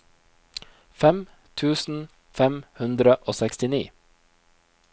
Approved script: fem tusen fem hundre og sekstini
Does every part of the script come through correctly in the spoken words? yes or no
yes